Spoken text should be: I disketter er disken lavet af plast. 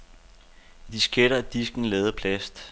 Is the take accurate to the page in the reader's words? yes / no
yes